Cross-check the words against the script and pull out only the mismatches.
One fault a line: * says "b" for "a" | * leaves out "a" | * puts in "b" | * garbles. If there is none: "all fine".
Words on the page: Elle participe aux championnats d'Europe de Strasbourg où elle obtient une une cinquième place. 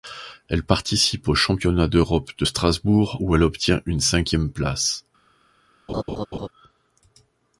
* leaves out "une"